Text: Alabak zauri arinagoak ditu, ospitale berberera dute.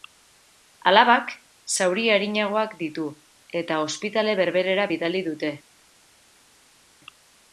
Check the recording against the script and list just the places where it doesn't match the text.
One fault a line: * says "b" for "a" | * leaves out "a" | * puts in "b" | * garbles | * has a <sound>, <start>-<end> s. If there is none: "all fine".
* puts in "eta"
* puts in "bidali"